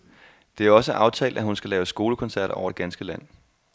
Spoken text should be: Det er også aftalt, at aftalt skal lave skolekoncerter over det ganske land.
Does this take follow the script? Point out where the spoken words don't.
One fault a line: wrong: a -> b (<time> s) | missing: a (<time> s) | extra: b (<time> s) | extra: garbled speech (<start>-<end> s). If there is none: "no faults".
wrong: aftalt -> hun (1.4 s)